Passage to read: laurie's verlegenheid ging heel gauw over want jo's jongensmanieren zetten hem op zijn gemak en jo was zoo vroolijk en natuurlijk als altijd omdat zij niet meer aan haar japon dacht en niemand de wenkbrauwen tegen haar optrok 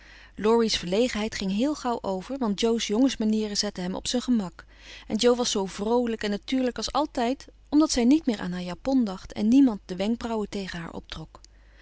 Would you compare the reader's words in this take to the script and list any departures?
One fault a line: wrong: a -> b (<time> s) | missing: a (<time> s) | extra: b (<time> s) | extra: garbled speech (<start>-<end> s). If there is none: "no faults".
no faults